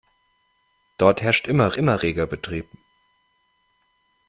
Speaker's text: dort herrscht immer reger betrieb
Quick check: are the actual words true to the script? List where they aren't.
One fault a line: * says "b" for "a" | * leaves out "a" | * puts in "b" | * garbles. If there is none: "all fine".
* puts in "immer"